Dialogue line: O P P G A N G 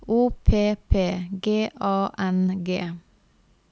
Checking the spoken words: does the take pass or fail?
pass